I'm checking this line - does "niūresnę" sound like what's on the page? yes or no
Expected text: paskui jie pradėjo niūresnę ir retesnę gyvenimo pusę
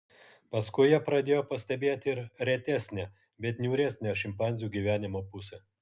no